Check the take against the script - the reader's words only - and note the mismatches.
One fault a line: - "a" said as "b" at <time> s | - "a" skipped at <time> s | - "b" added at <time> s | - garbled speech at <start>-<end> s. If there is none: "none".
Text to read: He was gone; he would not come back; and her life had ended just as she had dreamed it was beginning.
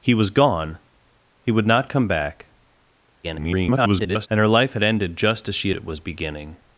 - garbled speech at 3.2-4.3 s
- "had dreamed" skipped at 5.7 s